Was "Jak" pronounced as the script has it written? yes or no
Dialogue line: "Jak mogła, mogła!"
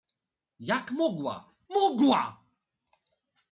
yes